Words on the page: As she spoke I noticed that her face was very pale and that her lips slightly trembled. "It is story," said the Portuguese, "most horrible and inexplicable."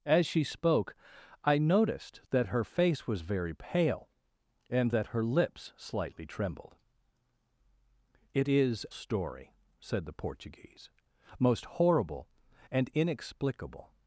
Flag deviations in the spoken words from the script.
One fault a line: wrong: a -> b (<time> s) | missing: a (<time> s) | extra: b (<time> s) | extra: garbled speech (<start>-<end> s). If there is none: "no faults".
no faults